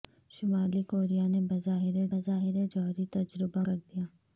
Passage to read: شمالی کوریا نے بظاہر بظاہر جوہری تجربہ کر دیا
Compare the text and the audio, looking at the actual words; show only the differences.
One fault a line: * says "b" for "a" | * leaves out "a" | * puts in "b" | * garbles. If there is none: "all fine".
all fine